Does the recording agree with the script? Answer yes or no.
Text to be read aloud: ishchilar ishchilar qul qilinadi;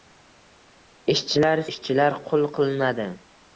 yes